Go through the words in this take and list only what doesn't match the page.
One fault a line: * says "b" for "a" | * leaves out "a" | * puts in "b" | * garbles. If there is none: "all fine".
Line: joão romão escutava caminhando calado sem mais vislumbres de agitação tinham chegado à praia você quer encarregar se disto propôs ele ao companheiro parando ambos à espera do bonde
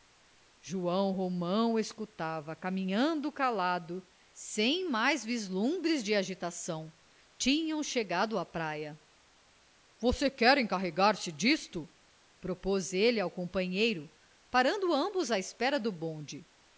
all fine